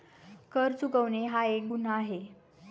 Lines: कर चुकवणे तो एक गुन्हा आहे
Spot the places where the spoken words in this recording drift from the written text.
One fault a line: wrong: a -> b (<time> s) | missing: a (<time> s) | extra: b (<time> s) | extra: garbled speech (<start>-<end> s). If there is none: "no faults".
wrong: तो -> हा (1.2 s)